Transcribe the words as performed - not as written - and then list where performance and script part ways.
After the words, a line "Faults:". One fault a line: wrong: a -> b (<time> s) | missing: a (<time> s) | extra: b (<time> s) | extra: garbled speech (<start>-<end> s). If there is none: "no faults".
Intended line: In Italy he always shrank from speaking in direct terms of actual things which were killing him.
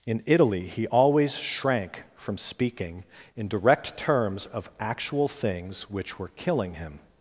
In Italy he always shrank from speaking in direct terms of actual things which were killing him.
Faults:
no faults